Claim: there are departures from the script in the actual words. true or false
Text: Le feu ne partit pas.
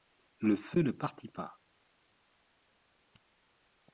false